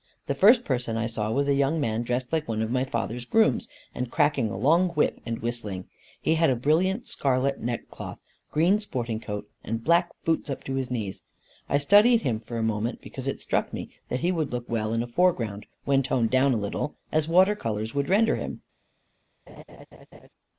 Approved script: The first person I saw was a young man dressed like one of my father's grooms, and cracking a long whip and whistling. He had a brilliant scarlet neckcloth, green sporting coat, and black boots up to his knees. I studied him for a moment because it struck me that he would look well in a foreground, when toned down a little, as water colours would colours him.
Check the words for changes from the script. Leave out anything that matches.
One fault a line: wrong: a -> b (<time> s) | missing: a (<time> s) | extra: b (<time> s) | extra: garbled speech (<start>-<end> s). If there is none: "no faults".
wrong: colours -> render (18.1 s)